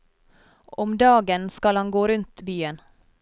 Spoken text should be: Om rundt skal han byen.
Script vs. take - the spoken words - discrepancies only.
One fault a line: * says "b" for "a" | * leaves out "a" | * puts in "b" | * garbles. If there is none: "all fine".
* says "dagen" for "rundt"
* puts in "gå rundt"